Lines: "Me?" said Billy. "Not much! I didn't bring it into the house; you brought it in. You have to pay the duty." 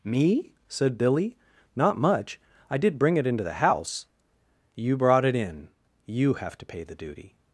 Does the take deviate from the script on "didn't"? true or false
true